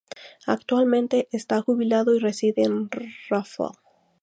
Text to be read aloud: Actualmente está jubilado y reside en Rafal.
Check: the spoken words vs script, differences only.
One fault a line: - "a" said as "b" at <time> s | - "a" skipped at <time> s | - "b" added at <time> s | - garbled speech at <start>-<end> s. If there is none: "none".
none